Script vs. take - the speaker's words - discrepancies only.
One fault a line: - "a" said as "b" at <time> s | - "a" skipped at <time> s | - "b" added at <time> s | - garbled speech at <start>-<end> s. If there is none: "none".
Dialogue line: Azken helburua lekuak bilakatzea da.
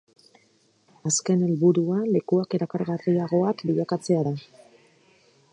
- "erakargarriagoak" added at 2.6 s